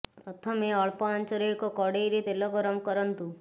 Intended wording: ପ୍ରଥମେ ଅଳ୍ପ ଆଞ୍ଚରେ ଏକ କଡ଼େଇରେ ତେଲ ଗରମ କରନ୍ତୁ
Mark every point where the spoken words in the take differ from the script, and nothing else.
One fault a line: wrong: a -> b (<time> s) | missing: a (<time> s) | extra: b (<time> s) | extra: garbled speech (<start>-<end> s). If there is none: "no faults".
no faults